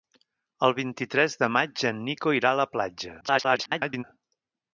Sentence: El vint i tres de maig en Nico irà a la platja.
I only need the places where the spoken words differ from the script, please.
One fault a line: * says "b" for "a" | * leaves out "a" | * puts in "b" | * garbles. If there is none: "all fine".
* garbles